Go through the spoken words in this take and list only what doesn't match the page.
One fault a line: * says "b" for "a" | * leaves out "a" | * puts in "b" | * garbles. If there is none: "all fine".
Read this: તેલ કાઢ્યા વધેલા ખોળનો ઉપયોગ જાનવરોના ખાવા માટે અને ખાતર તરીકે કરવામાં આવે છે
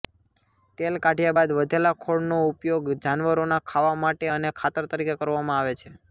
* puts in "બાદ"